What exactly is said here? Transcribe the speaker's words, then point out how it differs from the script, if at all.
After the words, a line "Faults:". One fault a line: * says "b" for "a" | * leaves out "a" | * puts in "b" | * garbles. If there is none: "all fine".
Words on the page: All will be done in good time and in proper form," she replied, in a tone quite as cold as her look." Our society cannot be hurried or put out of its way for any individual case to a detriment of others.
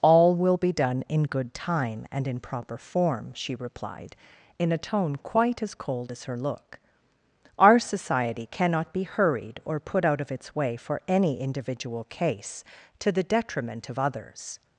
All will be done in good time and in proper form," she replied, in a tone quite as cold as her look." Our society cannot be hurried or put out of its way for any individual case to the detriment of others.
Faults:
* says "the" for "a"